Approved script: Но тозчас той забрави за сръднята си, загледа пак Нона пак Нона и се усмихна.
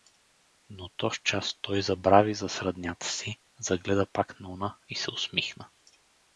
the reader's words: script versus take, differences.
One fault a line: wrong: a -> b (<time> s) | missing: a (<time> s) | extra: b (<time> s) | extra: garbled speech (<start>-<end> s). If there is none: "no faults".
missing: пак Нона (4.8 s)